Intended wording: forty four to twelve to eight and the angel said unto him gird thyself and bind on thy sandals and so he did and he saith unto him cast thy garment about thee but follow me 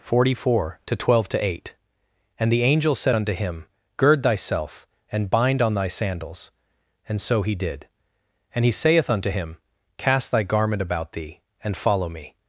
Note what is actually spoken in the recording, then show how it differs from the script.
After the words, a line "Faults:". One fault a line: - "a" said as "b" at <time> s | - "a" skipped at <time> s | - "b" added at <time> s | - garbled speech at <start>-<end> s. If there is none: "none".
forty four to twelve to eight and the angel said unto him gird thyself and bind on thy sandals and so he did and he saith unto him cast thy garment about thee and follow me
Faults:
- "but" said as "and" at 11.6 s